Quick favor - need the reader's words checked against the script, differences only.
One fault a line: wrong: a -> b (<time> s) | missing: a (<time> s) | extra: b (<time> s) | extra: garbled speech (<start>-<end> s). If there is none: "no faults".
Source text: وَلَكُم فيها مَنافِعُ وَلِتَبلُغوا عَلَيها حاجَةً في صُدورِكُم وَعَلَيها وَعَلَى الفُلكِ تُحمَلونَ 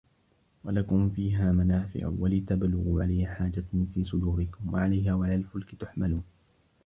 no faults